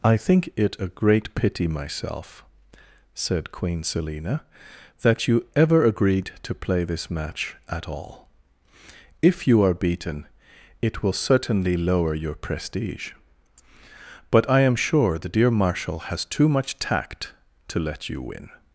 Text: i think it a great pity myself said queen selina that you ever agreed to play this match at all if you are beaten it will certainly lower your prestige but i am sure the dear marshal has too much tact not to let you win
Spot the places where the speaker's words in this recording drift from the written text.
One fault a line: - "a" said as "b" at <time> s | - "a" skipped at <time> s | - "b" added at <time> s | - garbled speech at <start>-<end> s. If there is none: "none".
- "not" skipped at 17.3 s